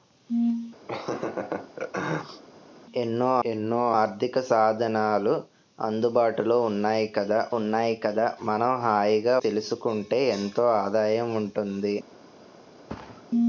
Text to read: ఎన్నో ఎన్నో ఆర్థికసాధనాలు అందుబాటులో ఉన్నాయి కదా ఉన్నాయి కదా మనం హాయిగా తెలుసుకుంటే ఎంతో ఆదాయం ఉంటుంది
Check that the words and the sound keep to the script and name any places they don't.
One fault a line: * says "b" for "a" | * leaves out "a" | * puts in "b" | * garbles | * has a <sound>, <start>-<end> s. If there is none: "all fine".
* has a laugh, 0.9-2.4 s
* has a thud, 12.9-13.3 s